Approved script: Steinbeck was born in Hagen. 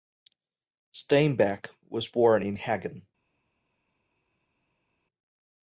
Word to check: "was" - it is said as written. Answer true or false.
true